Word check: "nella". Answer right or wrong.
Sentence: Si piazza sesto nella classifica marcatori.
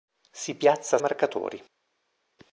wrong